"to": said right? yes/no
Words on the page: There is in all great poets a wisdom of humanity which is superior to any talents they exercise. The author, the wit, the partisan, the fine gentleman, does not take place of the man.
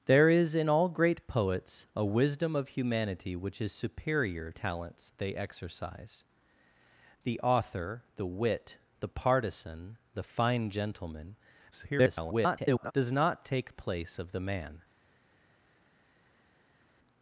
no